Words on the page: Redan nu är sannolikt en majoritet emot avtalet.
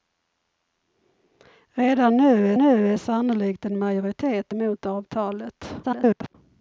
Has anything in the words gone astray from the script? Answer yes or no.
yes